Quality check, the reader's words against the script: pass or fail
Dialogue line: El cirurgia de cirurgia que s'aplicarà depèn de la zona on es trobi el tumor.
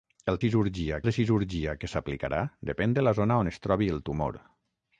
pass